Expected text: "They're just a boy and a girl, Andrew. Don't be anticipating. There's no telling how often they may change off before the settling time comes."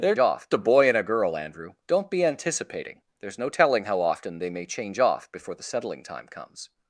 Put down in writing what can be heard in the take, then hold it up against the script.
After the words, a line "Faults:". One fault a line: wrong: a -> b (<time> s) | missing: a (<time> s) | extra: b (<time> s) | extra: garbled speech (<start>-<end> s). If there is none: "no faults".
"They're off a boy and a girl, Andrew. Don't be anticipating. There's no telling how often they may change off before the settling time comes."
Faults:
wrong: just -> off (0.2 s)